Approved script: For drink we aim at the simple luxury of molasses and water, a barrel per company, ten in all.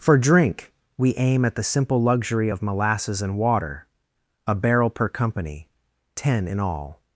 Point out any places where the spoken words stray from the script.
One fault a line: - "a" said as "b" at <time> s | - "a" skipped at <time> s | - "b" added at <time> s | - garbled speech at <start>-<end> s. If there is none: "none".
none